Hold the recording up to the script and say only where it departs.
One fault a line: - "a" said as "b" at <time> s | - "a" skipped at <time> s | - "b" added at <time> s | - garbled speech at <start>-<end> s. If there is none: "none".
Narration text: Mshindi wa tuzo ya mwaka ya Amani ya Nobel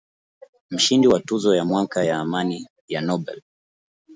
none